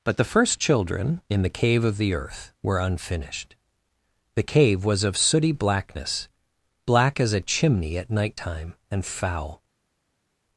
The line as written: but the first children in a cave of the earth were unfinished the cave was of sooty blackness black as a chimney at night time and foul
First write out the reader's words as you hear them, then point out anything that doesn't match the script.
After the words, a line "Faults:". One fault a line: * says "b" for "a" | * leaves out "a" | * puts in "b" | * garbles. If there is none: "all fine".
but the first children in the cave of the earth were unfinished the cave was of sooty blackness black as a chimney at night time and foul
Faults:
* says "the" for "a"